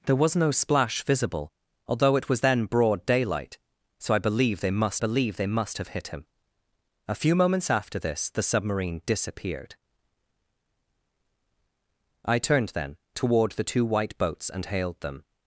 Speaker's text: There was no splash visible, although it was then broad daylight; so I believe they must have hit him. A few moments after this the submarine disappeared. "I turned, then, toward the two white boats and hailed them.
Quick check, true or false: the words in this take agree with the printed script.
false